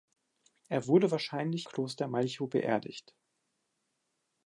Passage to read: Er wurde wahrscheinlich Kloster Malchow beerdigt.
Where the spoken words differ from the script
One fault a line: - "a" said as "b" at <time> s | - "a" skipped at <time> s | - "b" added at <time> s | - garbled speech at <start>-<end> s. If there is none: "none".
none